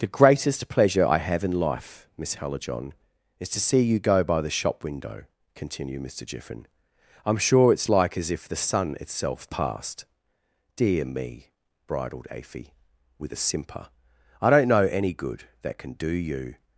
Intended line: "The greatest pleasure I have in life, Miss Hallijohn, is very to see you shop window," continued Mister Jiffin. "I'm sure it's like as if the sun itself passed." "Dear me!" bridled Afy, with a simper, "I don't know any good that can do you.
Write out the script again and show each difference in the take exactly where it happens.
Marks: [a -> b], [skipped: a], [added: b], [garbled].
"The greatest pleasure I have in life, Miss Hallijohn, is [skipped: very] to see you [added: go by the] shop window," continued Mister Jiffin. "I'm sure it's like as if the sun itself passed." "Dear me!" bridled Afy, with a simper, "I don't know any good that can do you.